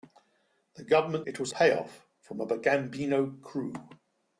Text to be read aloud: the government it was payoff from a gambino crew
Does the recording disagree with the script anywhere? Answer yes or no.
no